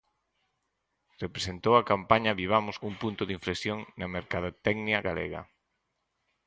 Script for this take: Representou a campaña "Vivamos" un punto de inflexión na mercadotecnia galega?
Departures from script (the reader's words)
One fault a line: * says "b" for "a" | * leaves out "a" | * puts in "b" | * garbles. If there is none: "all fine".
all fine